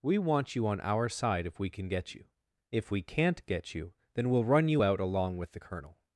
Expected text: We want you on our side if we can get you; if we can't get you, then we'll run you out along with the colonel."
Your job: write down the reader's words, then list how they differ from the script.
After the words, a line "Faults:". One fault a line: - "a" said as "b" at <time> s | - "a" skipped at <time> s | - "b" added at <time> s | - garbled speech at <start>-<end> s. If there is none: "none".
We want you on our side if we can get you; if we can't get you, then we'll run you out along with the colonel."
Faults:
none